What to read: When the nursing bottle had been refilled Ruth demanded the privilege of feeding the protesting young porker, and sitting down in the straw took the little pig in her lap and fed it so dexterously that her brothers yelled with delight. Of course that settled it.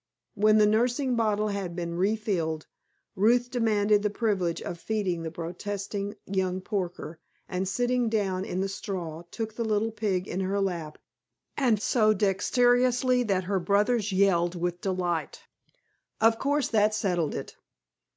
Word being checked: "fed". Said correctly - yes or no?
no